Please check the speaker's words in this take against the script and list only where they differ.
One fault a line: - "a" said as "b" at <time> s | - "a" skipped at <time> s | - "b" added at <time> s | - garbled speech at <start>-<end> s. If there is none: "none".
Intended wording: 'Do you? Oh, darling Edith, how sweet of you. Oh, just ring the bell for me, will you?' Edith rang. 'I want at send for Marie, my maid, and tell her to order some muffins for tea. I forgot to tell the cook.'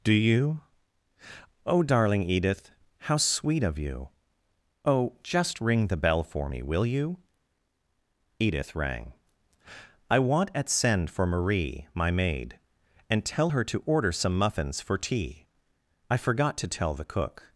none